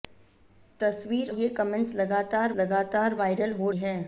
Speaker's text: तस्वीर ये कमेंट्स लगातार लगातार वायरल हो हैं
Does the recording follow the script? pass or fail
pass